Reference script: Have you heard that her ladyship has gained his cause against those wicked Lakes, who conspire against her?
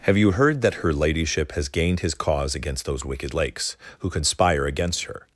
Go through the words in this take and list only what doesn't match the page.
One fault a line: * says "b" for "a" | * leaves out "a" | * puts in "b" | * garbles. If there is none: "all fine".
all fine